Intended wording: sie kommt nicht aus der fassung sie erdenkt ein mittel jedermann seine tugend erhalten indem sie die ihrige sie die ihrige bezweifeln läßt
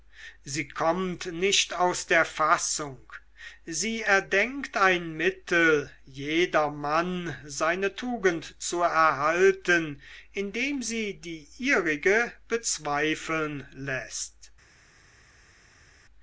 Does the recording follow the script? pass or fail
fail